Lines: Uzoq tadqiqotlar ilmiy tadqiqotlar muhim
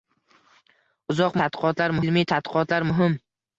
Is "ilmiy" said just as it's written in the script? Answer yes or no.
yes